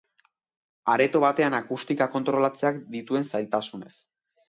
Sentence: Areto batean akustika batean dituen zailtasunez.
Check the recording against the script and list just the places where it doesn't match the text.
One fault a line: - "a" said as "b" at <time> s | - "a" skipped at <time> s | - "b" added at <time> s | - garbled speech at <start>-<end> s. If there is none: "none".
- "batean" said as "kontrolatzeak" at 2.2 s